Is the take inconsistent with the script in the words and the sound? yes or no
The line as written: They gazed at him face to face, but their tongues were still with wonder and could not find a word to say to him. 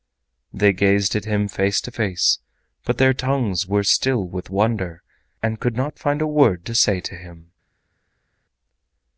no